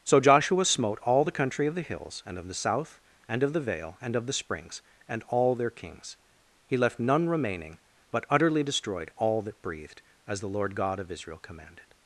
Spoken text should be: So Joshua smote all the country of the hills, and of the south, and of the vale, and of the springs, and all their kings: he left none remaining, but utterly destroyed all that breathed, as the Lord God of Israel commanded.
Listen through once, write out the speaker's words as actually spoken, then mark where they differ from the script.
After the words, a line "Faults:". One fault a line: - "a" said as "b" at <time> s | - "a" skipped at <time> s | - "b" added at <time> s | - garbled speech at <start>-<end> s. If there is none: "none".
So Joshua smote all the country of the hills, and of the south, and of the vale, and of the springs, and all their kings: he left none remaining, but utterly destroyed all that breathed, as the Lord God of Israel commanded.
Faults:
none